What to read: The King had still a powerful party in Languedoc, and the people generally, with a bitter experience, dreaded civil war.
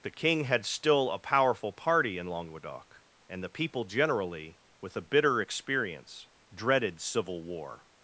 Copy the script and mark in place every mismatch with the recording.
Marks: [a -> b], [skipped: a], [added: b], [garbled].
The King had still a powerful party in Languedoc, and the people generally, with a bitter experience, dreaded civil war.